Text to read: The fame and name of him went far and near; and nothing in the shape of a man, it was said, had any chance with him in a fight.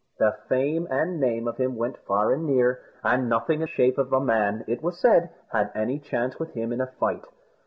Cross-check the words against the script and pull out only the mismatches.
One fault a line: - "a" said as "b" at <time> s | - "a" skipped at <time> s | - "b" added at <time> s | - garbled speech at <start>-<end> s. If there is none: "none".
- "the" skipped at 3.7 s